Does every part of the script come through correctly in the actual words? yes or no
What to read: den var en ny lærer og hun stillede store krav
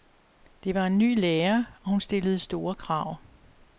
no